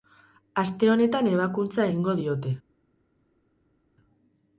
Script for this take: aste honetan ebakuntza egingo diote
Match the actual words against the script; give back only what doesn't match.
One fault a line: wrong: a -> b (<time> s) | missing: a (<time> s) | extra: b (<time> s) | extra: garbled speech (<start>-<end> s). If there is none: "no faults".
no faults